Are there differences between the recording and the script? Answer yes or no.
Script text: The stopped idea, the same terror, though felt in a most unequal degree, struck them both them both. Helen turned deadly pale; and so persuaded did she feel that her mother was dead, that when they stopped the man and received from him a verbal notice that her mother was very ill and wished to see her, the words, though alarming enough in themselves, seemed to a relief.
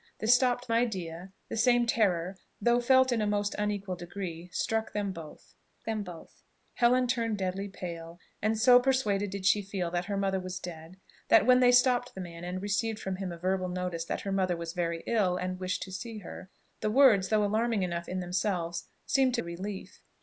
no